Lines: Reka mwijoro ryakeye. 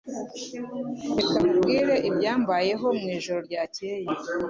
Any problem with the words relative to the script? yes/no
yes